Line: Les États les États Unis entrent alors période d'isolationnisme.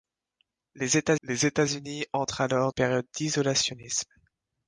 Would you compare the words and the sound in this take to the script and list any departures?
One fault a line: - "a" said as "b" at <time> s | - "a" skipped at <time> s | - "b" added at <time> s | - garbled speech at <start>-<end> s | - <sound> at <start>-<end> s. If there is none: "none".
none